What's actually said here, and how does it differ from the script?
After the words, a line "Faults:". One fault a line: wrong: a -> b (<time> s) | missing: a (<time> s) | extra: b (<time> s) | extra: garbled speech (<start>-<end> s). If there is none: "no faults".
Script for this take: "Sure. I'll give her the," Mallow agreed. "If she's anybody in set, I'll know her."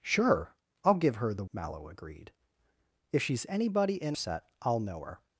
"Sure. I'll give her the," Mallow agreed. "If she's anybody in set, I'll know her."
Faults:
no faults